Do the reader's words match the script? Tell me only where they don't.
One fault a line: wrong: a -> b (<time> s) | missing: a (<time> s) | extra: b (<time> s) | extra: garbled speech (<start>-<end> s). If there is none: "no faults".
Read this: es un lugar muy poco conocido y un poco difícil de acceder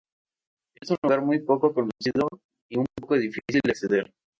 no faults